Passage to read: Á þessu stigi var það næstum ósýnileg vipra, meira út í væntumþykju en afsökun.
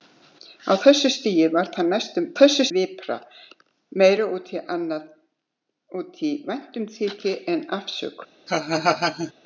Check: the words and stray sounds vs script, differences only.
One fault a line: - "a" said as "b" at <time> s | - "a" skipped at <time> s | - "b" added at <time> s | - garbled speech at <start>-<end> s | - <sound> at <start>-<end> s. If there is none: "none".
- "ósýnileg" said as "þessu" at 2.4 s
- laugh at 8.5-9.3 s